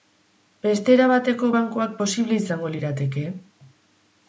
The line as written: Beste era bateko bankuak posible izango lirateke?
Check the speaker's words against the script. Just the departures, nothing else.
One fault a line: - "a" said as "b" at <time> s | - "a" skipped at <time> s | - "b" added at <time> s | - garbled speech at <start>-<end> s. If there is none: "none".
none